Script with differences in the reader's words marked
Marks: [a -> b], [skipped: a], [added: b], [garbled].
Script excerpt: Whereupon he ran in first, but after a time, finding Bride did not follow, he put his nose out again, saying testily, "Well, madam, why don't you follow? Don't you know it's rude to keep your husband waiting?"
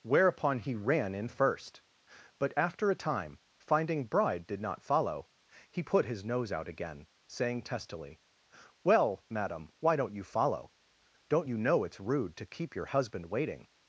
Whereupon he ran in first, but after a time, finding Bride did not follow, he put his nose out again, saying testily, "Well, madam, why don't you follow? Don't you know it's rude to keep your husband waiting?"